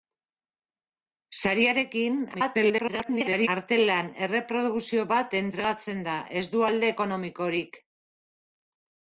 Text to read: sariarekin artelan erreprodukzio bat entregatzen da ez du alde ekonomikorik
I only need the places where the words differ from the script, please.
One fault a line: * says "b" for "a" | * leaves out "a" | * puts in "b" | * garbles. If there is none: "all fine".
* garbles